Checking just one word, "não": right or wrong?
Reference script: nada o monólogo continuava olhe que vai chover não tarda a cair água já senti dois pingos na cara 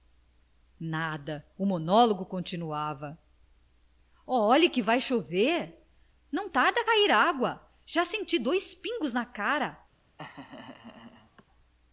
right